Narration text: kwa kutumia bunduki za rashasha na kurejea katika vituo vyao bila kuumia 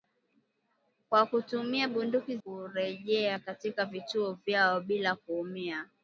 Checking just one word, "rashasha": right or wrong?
wrong